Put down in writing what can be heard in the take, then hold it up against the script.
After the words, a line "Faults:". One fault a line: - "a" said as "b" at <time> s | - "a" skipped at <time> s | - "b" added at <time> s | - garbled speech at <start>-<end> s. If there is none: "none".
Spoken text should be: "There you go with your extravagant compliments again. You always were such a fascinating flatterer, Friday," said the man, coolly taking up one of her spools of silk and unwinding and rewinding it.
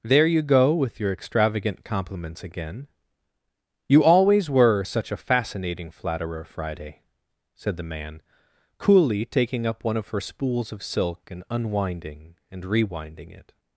"There you go with your extravagant compliments again. You always were such a fascinating flatterer, Friday," said the man, coolly taking up one of her spools of silk and unwinding and rewinding it.
Faults:
none